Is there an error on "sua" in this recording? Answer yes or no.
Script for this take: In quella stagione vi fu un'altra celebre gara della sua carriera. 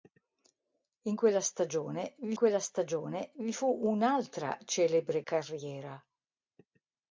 yes